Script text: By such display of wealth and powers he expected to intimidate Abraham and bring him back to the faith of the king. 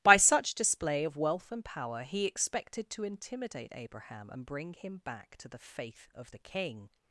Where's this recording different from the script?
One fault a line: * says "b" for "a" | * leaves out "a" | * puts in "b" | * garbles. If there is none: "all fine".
* says "power" for "powers"